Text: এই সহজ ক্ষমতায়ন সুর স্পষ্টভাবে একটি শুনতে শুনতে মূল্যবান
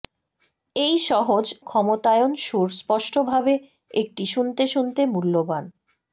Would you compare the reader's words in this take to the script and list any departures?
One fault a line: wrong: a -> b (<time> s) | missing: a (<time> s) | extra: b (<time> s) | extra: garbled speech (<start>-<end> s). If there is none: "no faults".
no faults